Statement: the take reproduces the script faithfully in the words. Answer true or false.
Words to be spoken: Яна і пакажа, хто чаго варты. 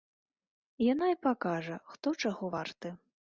true